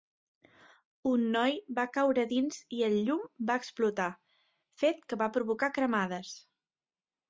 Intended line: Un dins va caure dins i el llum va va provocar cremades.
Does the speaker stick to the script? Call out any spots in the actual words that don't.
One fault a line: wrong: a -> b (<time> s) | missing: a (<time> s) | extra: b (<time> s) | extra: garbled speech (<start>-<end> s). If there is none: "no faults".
wrong: dins -> noi (1.4 s)
extra: explotar fet que (3.6 s)